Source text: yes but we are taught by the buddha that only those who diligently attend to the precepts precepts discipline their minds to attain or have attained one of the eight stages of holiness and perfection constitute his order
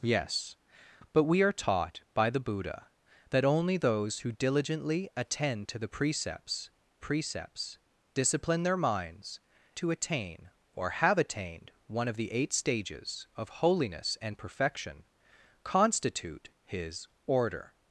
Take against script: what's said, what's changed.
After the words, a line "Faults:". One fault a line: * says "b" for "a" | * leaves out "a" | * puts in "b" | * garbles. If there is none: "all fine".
yes but we are taught by the buddha that only those who diligently attend to the precepts precepts discipline their minds to attain or have attained one of the eight stages of holiness and perfection constitute his order
Faults:
all fine